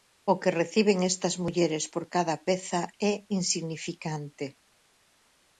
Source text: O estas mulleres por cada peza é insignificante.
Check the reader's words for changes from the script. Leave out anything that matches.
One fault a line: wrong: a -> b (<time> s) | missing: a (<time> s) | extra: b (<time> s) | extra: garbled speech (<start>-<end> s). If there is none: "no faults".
extra: que reciben (0.4 s)